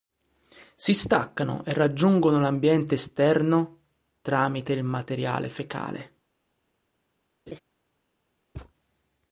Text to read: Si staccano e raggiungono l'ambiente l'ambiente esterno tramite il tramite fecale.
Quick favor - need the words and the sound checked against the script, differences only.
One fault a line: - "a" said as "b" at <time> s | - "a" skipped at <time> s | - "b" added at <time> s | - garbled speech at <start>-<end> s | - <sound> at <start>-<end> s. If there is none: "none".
- "l'ambiente" skipped at 3.0 s
- "tramite" said as "materiale" at 4.8 s
- laugh at 7.5-7.6 s
- thud at 8.5-8.7 s